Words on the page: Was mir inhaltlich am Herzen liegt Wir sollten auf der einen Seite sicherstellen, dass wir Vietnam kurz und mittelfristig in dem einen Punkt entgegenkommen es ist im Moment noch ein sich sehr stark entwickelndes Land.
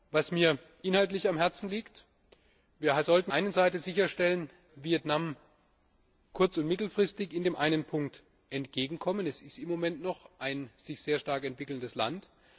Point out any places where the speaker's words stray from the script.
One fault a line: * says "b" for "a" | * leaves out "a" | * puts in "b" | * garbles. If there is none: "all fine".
* leaves out "auf der"
* leaves out "dass wir"